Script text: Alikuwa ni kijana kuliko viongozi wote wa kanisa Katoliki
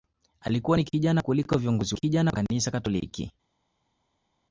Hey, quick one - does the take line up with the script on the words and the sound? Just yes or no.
no